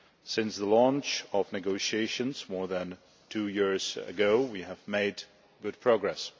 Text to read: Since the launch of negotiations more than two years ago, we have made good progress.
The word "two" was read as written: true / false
true